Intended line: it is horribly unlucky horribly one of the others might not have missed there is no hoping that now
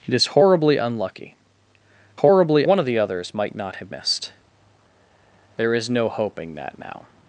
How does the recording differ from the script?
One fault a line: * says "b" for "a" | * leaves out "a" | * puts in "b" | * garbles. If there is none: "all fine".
all fine